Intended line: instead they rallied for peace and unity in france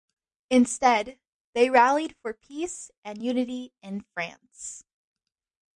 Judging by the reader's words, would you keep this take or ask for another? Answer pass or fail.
pass